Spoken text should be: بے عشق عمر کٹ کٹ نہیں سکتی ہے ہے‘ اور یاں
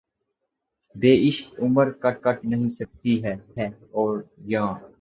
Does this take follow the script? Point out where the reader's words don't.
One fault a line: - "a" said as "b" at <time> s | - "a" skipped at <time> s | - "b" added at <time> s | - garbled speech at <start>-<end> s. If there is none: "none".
none